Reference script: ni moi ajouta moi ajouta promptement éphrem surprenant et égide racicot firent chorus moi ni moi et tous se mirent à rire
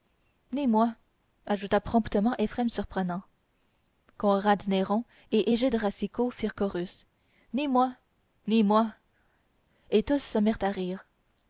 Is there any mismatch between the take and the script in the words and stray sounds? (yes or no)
yes